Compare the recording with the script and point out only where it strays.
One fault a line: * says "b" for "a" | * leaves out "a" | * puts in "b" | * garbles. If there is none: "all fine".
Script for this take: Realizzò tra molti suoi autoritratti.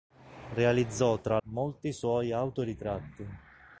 all fine